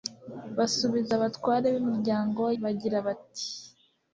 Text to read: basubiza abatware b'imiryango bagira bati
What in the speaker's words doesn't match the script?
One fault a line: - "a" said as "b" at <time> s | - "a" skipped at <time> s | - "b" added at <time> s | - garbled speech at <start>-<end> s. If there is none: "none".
none